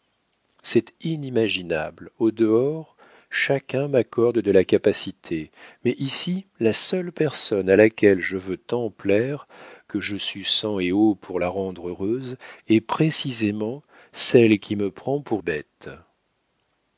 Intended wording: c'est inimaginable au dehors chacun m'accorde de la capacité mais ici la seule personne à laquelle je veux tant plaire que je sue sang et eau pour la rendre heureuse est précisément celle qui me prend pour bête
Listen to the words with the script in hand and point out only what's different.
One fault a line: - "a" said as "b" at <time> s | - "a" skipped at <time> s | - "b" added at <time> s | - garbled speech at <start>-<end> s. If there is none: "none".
none